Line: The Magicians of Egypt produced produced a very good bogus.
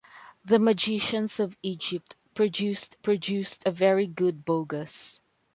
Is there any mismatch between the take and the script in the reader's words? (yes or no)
no